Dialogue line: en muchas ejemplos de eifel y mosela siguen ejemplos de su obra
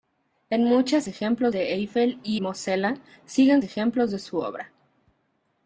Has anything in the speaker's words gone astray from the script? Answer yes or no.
no